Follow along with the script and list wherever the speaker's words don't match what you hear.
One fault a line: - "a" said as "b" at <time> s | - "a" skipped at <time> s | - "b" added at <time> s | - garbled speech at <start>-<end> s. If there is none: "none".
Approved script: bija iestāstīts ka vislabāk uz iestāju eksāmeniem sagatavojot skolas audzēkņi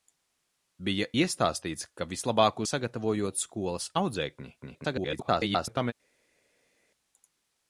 - "uz iestāju eksāmeniem" skipped at 2.6 s
- garbled speech at 4.6-5.9 s